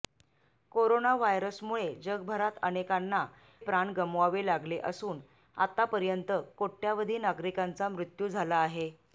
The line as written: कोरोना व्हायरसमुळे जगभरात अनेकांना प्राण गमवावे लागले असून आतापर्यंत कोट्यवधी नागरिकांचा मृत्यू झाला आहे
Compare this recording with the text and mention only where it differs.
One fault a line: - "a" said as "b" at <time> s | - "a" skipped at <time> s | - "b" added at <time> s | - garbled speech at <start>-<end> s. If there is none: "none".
none